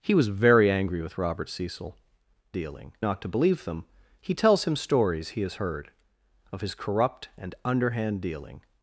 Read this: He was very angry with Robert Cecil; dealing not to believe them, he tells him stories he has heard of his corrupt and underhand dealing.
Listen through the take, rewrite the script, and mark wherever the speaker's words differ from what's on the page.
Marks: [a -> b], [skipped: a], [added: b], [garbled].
He was very angry with Robert Cecil; dealing not to believe them, he tells him stories he has heard of his corrupt and underhand dealing.